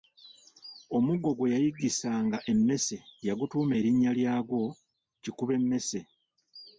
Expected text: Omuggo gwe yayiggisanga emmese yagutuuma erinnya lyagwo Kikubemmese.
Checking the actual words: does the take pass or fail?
pass